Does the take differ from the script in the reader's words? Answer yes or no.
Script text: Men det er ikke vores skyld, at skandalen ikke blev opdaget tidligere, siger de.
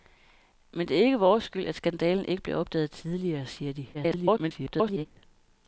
yes